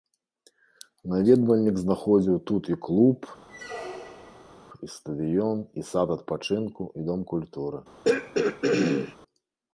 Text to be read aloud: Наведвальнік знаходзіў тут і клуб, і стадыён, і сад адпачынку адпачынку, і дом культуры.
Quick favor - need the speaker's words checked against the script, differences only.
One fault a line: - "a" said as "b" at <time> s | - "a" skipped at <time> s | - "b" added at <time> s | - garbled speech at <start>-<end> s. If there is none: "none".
- "адпачынку" skipped at 6.8 s